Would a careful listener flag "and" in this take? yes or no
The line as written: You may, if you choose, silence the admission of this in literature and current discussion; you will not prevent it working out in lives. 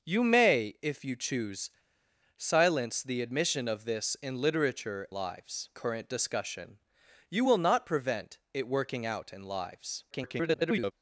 yes